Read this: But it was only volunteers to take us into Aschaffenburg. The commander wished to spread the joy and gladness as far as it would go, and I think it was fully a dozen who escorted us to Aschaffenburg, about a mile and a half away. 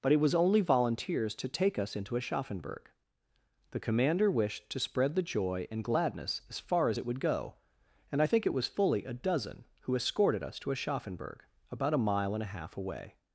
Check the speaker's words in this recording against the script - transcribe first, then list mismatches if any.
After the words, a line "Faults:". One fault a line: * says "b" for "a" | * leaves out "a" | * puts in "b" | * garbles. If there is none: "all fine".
But it was only volunteers to take us into Aschaffenburg. The commander wished to spread the joy and gladness as far as it would go, and I think it was fully a dozen who escorted us to Aschaffenburg, about a mile and a half away.
Faults:
all fine